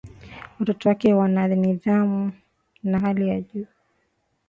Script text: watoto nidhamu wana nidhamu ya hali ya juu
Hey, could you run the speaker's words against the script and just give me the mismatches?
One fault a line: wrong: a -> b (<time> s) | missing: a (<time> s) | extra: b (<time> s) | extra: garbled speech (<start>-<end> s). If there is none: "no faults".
wrong: nidhamu -> wake (0.9 s)